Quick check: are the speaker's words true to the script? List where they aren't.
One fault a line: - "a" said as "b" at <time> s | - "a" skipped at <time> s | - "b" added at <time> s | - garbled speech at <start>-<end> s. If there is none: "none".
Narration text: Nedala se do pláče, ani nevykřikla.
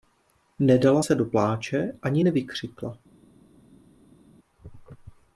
none